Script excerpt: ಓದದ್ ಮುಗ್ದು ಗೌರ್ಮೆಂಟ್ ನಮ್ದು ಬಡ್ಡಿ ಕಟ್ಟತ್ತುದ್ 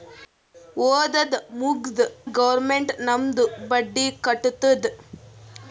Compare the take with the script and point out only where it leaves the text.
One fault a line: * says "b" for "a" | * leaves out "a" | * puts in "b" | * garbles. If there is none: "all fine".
all fine